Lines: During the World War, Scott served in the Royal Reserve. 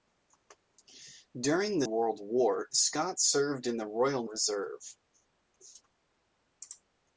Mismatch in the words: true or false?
false